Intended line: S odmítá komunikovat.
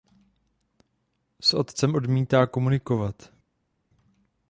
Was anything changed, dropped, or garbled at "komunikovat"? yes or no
no